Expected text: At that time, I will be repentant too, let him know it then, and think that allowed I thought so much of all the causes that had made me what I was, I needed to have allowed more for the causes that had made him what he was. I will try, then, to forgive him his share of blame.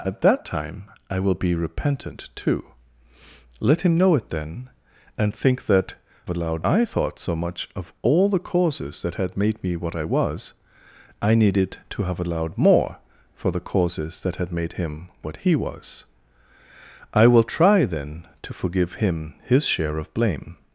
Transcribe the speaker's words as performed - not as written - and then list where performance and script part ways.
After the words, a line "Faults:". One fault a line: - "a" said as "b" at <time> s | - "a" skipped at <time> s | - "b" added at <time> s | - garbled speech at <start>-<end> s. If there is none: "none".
At that time, I will be repentant too, let him know it then, and think that allowed I thought so much of all the causes that had made me what I was, I needed to have allowed more for the causes that had made him what he was. I will try, then, to forgive him his share of blame.
Faults:
none